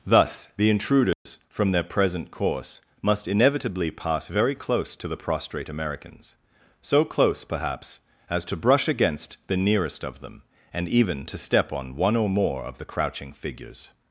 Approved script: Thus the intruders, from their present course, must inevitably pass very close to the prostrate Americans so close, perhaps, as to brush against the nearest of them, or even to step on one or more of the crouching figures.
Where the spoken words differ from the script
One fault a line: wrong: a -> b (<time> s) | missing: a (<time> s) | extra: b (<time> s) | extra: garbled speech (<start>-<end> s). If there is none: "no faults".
wrong: or -> and (10.7 s)